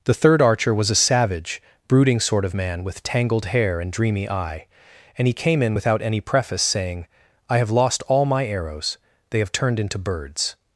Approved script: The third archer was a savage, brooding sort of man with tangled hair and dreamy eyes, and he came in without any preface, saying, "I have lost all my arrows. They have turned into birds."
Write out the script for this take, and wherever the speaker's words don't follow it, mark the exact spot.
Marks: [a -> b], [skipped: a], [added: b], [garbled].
The third archer was a savage, brooding sort of man with tangled hair and dreamy [eyes, -> eye] and he came in without any preface, saying, "I have lost all my arrows. They have turned into birds."